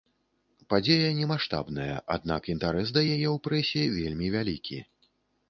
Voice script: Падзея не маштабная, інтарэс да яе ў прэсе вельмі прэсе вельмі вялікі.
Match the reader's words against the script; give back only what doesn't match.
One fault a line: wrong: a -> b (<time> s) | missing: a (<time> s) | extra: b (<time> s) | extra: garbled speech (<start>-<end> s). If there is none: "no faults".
extra: аднак (2.1 s)
missing: прэсе вельмі (4.3 s)